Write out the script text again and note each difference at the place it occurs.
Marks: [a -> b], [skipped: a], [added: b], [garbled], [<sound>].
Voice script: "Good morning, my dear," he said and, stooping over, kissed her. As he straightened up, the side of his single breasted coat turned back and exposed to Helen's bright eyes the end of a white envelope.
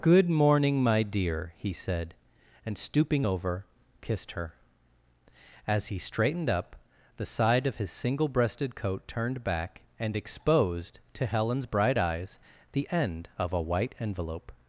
"Good morning, my dear," he said and, stooping over, kissed her. As he straightened up, the side of his single breasted coat turned back and exposed to Helen's bright eyes the end of a white envelope.